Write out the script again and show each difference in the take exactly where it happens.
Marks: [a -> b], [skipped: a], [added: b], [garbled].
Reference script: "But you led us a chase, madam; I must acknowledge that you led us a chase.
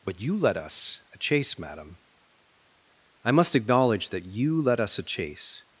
"But you led us a chase, madam; I must acknowledge that you led us a chase.